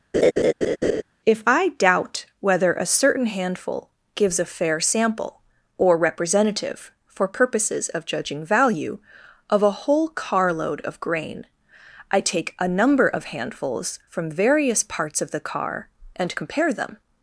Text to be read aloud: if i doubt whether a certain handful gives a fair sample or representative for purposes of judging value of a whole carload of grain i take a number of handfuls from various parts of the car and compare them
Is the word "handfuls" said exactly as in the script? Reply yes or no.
yes